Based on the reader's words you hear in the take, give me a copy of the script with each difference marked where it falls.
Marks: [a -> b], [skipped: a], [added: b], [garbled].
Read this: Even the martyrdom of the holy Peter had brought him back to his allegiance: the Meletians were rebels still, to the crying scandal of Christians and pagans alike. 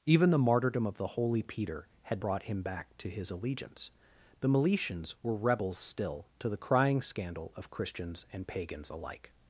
Even the martyrdom of the holy Peter had brought him back to his allegiance: the Meletians were rebels still, to the crying scandal of Christians and pagans alike.